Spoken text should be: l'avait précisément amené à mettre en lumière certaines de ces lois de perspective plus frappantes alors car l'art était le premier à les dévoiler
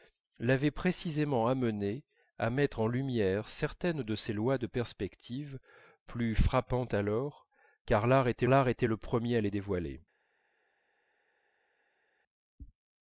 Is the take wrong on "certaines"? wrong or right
right